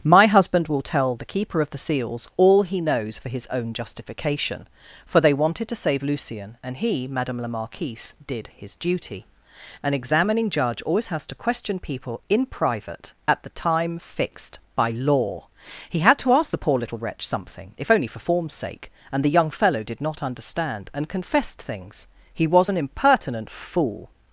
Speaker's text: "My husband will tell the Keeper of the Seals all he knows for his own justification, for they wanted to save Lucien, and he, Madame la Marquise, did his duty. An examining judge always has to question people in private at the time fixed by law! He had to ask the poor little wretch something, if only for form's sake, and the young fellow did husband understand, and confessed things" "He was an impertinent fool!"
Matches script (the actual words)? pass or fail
fail